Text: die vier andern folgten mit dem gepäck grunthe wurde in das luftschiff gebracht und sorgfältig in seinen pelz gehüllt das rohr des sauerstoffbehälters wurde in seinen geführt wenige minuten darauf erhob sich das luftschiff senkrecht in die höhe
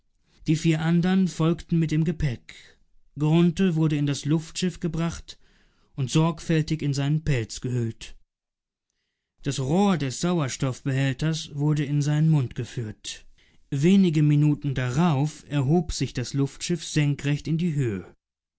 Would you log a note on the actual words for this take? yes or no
yes